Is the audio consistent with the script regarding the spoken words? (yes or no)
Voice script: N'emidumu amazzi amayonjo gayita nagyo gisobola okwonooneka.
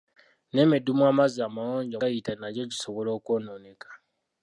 yes